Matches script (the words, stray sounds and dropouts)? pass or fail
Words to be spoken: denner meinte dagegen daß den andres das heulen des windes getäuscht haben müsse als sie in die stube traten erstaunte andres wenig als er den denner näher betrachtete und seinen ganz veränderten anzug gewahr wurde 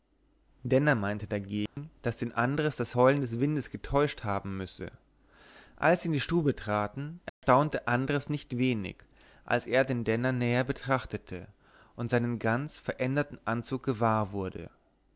fail